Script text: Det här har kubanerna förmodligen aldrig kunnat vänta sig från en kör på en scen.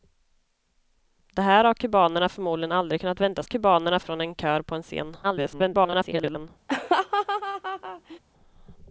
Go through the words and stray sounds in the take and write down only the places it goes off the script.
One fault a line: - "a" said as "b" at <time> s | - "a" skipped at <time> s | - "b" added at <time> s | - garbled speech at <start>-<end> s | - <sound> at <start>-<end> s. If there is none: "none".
- "sig" said as "kubanerna" at 3.4 s
- garbled speech at 5.2-6.5 s
- laugh at 6.7-8.2 s